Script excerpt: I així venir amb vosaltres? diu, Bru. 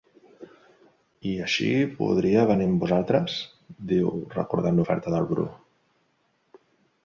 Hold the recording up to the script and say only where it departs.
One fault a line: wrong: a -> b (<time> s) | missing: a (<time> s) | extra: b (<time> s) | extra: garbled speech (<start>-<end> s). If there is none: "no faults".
extra: podria (2.0 s)
extra: recordant l'oferta del (4.4 s)